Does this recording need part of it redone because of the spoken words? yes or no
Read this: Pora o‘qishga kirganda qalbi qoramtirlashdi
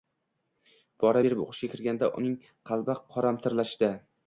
yes